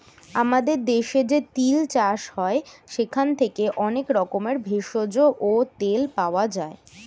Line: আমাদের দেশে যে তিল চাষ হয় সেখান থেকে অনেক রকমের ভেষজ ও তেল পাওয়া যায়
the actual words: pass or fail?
pass